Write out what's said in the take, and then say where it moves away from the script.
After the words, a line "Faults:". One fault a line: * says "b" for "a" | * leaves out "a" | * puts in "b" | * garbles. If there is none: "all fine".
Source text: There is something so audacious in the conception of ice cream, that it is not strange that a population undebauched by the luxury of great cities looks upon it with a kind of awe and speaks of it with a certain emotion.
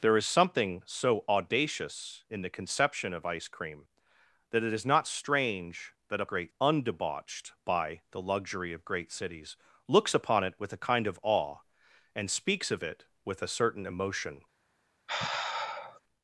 There is something so audacious in the conception of ice cream, that it is not strange that a great undebauched by the luxury of great cities looks upon it with a kind of awe and speaks of it with a certain emotion.
Faults:
* says "great" for "population"